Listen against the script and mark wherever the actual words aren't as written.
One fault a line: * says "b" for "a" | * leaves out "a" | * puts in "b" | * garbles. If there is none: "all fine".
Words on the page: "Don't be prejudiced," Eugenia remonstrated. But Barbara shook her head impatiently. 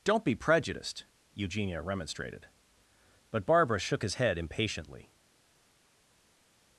* says "his" for "her"